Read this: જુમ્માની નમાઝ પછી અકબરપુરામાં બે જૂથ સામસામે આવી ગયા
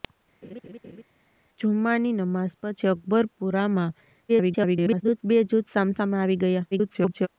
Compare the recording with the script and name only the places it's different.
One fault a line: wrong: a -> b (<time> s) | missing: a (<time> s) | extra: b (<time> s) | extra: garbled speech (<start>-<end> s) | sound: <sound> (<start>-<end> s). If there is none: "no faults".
sound: laugh (0.4-1.0 s)
extra: garbled speech (4.3-5.2 s)
extra: garbled speech (6.7-7.3 s)